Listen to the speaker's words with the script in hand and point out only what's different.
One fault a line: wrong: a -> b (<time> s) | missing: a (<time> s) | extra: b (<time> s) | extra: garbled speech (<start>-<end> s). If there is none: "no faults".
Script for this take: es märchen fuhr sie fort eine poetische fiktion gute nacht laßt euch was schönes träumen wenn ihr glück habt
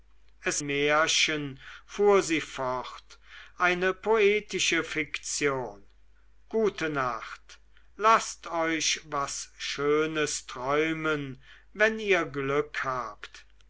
no faults